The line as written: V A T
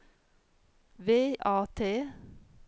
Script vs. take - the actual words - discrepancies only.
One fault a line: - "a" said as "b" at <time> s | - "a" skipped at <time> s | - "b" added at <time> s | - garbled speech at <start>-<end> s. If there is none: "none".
none